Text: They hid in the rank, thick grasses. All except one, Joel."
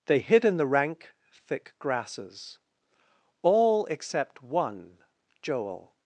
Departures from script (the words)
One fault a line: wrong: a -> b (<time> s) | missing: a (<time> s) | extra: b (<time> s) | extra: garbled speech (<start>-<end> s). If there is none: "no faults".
no faults